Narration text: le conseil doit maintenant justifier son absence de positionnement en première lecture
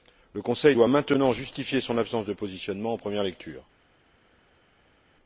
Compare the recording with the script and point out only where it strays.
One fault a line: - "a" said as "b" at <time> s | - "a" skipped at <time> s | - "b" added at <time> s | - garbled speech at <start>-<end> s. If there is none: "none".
none